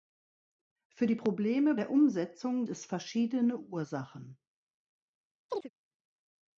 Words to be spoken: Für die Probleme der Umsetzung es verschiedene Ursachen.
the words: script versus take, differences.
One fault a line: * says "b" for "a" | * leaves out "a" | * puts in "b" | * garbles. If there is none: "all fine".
all fine